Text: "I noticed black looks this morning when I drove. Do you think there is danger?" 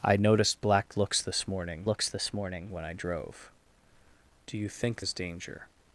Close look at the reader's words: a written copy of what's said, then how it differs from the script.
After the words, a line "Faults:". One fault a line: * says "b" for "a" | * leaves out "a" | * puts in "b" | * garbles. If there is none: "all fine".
"I noticed black looks this morning looks this morning when I drove. Do you think is danger?"
Faults:
* puts in "looks this morning"
* leaves out "there"